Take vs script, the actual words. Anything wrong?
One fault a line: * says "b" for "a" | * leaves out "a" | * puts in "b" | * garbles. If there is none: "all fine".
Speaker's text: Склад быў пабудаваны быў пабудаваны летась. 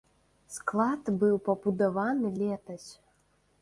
* leaves out "быў пабудаваны"